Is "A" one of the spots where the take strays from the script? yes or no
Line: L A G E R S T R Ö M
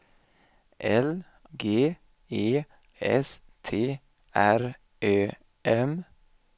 yes